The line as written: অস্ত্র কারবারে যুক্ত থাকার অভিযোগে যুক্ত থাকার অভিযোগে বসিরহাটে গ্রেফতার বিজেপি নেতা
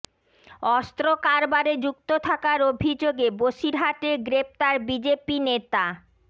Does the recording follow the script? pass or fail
fail